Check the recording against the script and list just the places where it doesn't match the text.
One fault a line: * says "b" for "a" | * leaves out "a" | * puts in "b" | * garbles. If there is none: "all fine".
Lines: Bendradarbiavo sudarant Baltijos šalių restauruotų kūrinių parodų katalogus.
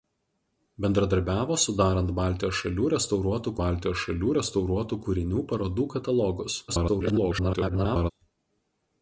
* puts in "Baltijos šalių restauruotų"
* garbles